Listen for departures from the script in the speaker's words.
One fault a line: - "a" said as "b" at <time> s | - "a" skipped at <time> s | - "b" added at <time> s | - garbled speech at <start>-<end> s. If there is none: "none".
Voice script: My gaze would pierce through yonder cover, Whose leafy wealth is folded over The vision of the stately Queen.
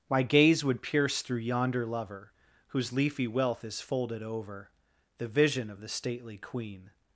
- "cover" said as "lover" at 1.9 s